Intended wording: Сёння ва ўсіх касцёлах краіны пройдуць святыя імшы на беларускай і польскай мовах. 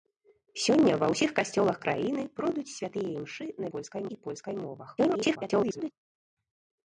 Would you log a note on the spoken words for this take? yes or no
yes